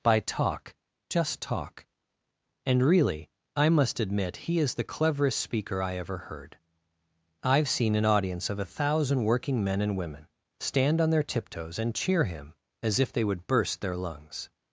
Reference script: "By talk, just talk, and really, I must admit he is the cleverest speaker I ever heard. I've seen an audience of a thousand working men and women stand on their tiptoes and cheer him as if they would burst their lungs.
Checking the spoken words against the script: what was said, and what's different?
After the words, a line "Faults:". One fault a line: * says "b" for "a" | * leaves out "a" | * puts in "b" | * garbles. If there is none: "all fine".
"By talk, just talk, and really, I must admit he is the cleverest speaker I ever heard. I've seen an audience of a thousand working men and women stand on their tiptoes and cheer him as if they would burst their lungs.
Faults:
all fine